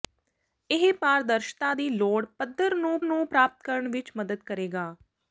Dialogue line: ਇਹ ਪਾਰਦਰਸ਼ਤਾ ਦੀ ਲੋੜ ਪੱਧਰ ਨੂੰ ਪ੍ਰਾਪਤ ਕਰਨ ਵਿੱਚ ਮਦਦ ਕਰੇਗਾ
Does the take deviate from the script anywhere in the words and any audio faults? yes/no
yes